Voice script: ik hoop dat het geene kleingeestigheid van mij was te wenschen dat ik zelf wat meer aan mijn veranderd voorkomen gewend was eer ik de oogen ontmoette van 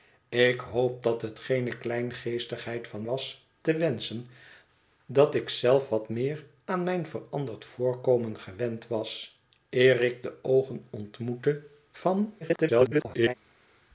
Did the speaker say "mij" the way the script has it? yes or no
no